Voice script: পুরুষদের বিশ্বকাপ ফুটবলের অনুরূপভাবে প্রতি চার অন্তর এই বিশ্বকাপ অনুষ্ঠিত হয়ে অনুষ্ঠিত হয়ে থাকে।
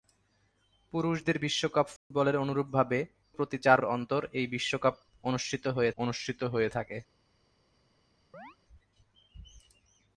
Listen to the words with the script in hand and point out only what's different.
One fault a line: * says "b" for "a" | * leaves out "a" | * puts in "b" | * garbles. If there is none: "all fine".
all fine